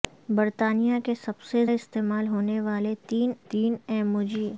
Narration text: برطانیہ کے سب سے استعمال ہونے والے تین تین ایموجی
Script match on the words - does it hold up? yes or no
yes